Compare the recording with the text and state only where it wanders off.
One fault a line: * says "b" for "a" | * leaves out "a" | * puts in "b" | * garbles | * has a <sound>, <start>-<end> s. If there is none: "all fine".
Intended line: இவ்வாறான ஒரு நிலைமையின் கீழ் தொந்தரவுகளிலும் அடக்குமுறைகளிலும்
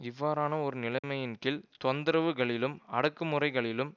* has a dropout, 1.0-1.0 s